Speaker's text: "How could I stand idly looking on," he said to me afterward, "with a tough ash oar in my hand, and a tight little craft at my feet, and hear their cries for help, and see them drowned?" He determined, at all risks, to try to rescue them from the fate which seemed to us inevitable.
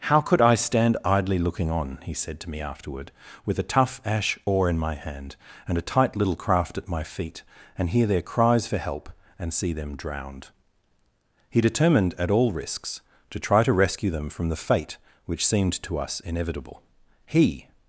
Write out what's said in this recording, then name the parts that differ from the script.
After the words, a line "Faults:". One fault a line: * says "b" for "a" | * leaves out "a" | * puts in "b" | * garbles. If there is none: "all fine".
"How could I stand idly looking on," he said to me afterward, "with a tough ash oar in my hand, and a tight little craft at my feet, and hear their cries for help, and see them drowned?" He determined, at all risks, to try to rescue them from the fate which seemed to us inevitable. He
Faults:
* puts in "He"